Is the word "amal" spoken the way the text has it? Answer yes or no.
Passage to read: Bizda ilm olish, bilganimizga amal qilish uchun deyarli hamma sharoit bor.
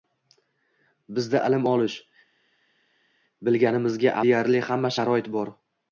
no